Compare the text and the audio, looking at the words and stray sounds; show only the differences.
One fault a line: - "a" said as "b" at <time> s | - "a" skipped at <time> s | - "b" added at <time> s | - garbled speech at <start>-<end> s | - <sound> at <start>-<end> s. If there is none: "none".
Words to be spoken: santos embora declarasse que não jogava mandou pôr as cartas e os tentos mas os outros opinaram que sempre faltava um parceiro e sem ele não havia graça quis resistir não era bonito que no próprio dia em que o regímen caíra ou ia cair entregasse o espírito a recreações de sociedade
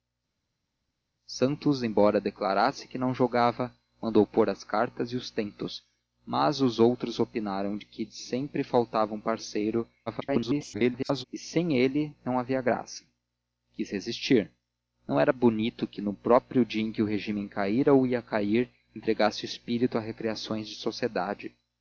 - garbled speech at 10.1-11.2 s